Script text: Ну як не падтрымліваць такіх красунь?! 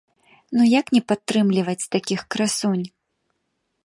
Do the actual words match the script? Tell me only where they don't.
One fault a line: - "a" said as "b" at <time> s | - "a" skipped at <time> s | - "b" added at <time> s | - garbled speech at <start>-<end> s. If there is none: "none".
none